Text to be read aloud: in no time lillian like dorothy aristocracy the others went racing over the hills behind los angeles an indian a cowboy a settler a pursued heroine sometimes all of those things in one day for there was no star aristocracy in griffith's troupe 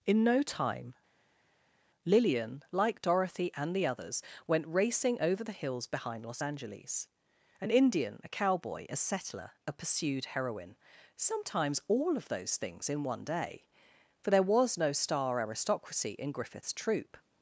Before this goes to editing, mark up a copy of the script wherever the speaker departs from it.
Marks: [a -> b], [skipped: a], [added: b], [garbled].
in no time lillian like dorothy [aristocracy -> and] the others went racing over the hills behind los angeles an indian a cowboy a settler a pursued heroine sometimes all of those things in one day for there was no star aristocracy in griffith's troupe